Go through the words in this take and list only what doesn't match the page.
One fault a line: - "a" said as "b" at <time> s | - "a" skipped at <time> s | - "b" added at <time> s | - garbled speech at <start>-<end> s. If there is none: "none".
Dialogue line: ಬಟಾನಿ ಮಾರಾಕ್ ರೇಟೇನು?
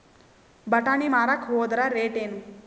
- "ಹೋದರ" added at 1.4 s